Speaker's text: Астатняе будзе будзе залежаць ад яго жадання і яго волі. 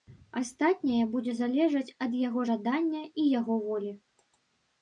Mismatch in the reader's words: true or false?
true